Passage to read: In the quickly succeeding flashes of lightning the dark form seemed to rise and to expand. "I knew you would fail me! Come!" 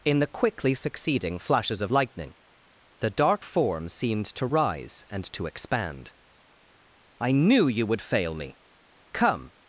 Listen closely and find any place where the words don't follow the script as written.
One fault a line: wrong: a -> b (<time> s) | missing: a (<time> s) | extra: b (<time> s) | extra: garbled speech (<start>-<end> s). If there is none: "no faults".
no faults